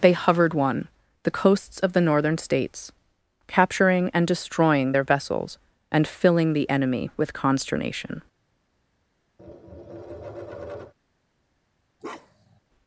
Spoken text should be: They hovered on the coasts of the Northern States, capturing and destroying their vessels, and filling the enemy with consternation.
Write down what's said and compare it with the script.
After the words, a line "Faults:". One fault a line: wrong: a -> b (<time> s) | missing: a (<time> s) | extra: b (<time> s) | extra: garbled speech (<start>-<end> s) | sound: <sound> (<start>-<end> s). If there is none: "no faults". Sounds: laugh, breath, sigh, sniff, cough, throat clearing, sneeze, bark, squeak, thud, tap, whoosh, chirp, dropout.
They hovered one the coasts of the Northern States, capturing and destroying their vessels, and filling the enemy with consternation.
Faults:
wrong: on -> one (0.6 s)
sound: tap (9.4-10.9 s)
sound: bark (12.0-12.6 s)